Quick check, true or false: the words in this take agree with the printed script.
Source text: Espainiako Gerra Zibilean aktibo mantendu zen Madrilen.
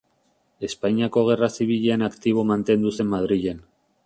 true